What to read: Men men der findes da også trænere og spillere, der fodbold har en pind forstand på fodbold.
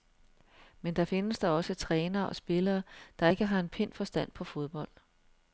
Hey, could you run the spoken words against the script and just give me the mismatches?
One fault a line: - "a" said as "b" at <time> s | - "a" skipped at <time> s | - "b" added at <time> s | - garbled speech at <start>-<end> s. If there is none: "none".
- "men" skipped at 0.9 s
- "fodbold" said as "ikke" at 3.3 s